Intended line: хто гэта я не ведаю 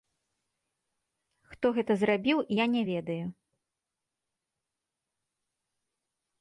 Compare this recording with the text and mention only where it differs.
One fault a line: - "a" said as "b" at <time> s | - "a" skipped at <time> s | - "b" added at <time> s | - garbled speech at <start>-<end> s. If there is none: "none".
- "зрабіў" added at 2.0 s